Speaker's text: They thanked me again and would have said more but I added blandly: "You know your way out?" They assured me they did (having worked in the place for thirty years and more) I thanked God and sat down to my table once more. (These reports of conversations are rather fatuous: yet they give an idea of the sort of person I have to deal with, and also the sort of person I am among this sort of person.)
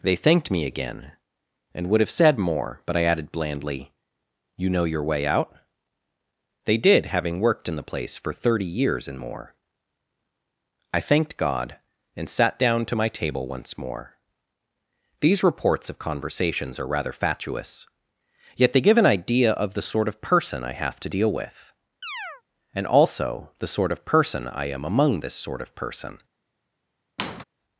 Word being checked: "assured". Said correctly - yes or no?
no